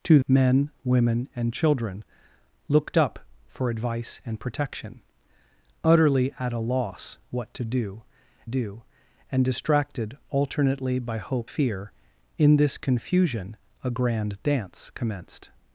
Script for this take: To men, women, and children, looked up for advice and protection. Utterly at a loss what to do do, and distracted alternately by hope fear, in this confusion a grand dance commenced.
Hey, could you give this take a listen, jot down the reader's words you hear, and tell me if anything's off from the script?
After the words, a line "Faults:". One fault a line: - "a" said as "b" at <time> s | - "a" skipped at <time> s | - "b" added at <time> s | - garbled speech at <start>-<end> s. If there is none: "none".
To men, women, and children, looked up for advice and protection. Utterly at a loss what to do do, and distracted alternately by hope fear, in this confusion a grand dance commenced.
Faults:
none